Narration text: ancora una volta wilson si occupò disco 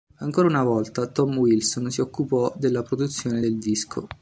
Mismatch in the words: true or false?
true